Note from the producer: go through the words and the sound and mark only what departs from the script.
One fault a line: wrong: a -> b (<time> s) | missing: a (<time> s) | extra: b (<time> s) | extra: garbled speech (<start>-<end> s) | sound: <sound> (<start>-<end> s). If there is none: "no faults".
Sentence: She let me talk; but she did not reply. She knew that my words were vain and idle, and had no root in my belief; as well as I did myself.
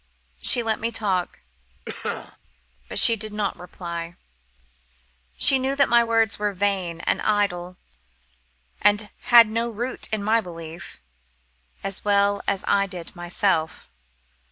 sound: cough (1.9-2.4 s)